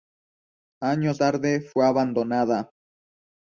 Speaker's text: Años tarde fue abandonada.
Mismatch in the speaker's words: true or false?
false